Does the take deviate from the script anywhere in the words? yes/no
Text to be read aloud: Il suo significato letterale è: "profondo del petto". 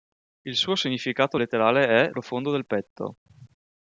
no